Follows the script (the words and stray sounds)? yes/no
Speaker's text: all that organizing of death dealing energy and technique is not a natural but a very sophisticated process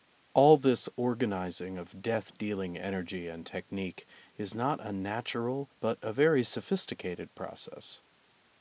no